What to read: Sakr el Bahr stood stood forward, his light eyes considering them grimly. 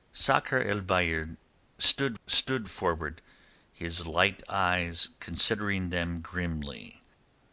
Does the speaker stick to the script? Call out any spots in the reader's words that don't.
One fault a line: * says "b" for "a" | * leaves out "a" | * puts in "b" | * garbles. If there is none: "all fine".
all fine